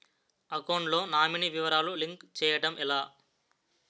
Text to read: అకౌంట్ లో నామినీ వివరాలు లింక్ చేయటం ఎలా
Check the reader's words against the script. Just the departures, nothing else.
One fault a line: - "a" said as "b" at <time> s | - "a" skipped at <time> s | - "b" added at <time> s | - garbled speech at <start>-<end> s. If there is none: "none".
none